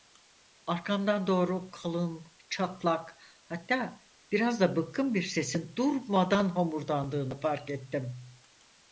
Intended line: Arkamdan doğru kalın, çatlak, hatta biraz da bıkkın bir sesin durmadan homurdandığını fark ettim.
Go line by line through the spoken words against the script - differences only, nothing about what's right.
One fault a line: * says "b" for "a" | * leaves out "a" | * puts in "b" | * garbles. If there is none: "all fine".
all fine